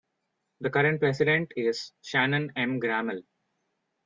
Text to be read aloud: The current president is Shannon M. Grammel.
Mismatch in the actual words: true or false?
false